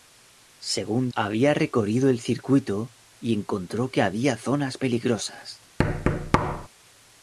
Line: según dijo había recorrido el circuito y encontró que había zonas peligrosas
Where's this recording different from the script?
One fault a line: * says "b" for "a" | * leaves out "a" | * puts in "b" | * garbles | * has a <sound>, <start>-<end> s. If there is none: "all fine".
* leaves out "dijo"
* has a thud, 5.8-6.7 s